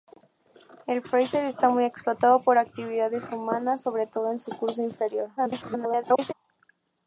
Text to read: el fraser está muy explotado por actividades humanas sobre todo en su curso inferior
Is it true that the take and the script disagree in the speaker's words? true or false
true